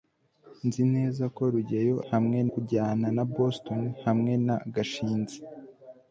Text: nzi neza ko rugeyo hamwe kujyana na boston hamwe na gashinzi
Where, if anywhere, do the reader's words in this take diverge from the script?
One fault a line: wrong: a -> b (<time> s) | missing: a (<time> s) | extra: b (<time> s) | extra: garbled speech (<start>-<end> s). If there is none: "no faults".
no faults